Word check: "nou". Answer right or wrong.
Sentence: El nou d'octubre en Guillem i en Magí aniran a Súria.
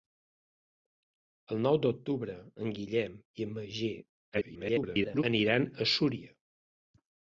right